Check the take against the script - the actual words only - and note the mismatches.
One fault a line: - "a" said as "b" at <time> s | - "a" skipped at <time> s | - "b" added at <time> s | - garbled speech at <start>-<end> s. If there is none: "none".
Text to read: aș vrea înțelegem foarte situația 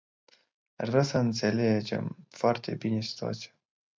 - "să" added at 1.0 s
- "bine" added at 2.8 s